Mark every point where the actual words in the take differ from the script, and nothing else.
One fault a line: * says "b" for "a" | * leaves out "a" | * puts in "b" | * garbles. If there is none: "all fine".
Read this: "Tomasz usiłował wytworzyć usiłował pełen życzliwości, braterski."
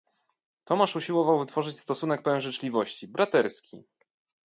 * says "stosunek" for "usiłował"